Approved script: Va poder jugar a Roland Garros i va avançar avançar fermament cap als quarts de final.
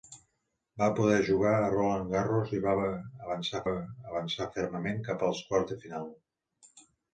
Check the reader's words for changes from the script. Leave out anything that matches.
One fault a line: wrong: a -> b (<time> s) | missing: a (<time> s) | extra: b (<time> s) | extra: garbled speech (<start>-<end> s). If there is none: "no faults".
no faults